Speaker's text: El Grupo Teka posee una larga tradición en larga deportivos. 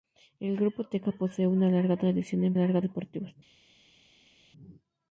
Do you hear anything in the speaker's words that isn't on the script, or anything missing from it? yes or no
no